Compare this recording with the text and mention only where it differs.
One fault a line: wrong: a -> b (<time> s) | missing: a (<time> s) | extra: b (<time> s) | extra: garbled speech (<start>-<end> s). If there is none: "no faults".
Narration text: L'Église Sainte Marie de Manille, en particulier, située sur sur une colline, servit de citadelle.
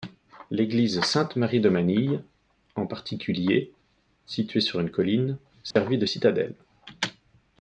missing: sur (4.8 s)